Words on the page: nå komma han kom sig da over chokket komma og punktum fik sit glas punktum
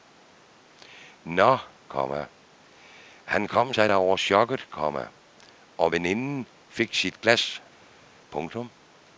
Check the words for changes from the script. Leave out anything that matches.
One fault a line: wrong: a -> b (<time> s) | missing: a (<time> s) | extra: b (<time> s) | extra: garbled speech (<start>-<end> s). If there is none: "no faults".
wrong: punktum -> veninden (5.9 s)